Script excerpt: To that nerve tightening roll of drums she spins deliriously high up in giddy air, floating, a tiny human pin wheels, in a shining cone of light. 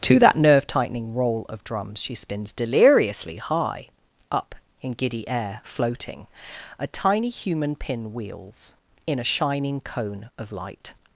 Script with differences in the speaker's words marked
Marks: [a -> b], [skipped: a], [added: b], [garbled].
To that nerve tightening roll of drums she spins deliriously high up in giddy air, floating, a tiny human pin wheels, in a shining cone of light.